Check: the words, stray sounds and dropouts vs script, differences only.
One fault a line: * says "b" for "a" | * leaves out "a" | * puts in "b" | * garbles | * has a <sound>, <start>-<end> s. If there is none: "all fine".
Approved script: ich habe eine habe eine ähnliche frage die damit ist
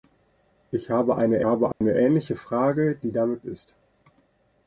* has a dropout, 1.7-1.8 s